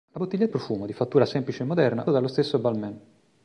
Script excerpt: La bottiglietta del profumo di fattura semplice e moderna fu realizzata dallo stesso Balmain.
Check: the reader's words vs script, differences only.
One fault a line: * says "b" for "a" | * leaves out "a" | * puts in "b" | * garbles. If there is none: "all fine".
* leaves out "del"
* leaves out "fu realizzata"